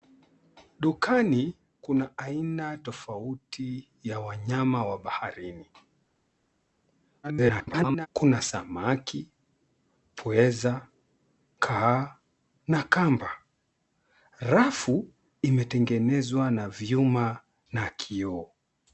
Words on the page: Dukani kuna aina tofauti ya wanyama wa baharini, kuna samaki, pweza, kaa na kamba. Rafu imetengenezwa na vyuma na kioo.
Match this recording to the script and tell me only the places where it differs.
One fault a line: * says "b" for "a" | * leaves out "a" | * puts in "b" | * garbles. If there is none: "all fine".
* garbles